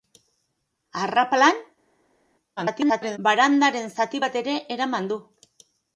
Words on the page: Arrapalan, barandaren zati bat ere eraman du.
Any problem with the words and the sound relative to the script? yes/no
yes